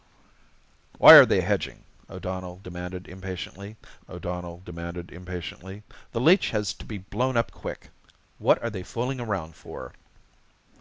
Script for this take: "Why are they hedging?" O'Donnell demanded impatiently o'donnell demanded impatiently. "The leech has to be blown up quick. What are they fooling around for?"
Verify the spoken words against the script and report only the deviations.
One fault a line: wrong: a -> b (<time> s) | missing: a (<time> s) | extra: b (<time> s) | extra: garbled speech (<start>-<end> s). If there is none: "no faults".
no faults